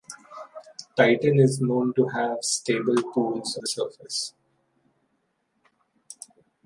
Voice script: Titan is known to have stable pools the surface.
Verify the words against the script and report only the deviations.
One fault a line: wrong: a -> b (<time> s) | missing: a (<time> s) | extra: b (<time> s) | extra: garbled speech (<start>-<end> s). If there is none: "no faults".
no faults